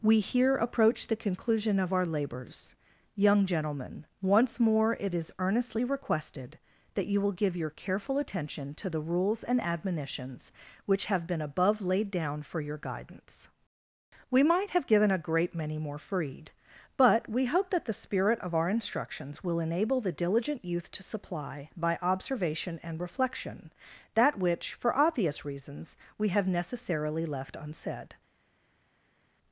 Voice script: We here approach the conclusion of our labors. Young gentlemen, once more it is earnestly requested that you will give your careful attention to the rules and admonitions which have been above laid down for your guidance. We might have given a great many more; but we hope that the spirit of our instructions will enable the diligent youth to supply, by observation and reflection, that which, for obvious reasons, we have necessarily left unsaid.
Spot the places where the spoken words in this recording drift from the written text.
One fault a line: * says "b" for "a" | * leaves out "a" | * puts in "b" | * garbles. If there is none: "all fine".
* puts in "freed"